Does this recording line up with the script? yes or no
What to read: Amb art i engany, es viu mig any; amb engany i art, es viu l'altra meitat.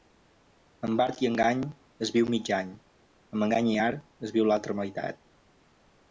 yes